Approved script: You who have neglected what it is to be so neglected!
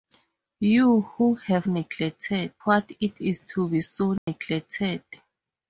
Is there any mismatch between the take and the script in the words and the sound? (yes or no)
yes